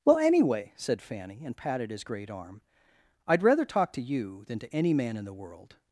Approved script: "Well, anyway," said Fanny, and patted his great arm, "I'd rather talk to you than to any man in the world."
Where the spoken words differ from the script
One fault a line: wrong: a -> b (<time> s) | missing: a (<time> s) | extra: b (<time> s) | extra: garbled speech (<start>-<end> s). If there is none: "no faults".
no faults